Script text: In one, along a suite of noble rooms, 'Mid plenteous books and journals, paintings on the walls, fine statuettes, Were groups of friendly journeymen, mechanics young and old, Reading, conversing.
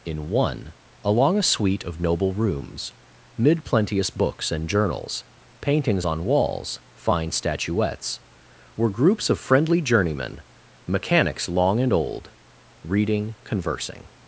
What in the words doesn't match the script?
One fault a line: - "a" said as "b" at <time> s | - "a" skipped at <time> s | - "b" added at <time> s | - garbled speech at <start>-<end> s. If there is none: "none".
- "the" skipped at 6.2 s
- "young" said as "long" at 11.5 s